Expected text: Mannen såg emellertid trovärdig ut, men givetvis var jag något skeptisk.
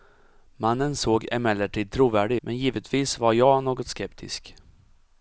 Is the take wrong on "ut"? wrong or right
wrong